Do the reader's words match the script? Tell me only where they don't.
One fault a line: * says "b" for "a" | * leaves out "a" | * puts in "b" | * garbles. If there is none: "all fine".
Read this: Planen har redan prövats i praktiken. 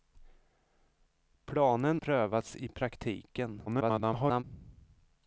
* leaves out "har redan"
* garbles